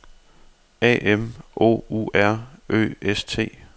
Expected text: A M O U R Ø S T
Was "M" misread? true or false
false